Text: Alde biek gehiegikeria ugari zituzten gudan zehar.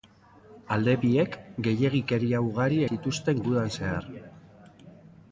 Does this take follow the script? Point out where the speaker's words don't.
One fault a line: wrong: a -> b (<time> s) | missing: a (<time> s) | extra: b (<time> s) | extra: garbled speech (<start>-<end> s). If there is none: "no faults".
no faults